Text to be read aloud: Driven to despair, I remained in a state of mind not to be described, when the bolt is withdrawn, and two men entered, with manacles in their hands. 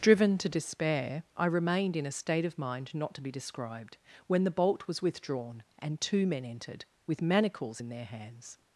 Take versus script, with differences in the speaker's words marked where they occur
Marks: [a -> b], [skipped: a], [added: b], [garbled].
Driven to despair, I remained in a state of mind not to be described, when the bolt [is -> was] withdrawn, and two men entered, with manacles in their hands.